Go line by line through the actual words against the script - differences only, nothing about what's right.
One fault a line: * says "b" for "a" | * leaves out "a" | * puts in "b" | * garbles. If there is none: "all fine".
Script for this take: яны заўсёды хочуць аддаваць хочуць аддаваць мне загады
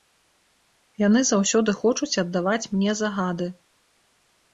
* leaves out "хочуць аддаваць"